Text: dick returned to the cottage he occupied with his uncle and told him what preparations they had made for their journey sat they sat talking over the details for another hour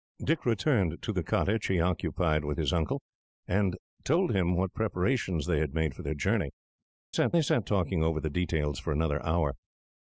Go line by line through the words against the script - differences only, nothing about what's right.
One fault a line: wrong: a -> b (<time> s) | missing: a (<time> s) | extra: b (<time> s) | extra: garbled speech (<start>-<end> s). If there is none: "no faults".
no faults